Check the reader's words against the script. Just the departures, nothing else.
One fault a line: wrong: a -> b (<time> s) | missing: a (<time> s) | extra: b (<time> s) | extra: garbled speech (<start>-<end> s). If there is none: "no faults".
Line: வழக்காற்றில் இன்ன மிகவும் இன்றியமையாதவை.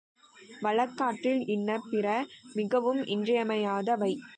extra: பிற (1.9 s)